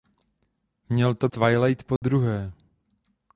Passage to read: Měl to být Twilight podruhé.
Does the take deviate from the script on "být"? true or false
true